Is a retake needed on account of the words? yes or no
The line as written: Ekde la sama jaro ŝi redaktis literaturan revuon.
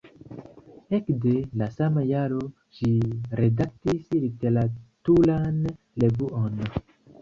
no